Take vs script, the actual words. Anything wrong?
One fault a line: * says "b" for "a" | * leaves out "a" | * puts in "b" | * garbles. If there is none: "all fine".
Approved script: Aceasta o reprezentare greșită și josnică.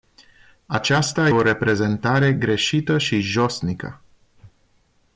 all fine